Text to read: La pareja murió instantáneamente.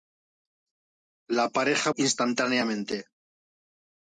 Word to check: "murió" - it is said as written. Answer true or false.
false